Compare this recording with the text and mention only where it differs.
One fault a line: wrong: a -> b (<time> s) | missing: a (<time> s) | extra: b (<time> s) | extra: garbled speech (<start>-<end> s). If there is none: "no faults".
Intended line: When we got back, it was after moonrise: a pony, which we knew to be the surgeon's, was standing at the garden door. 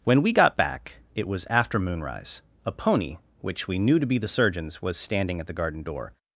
no faults